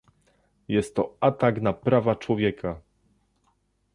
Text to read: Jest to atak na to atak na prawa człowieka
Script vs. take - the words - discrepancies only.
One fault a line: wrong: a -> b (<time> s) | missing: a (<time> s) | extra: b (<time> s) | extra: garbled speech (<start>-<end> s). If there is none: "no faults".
missing: to atak na (1.7 s)